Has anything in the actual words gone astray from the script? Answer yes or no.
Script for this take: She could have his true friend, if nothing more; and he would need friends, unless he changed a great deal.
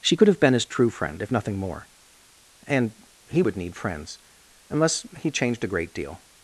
yes